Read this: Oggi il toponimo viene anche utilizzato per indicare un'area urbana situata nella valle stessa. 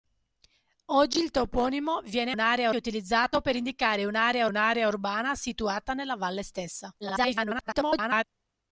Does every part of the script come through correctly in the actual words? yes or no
no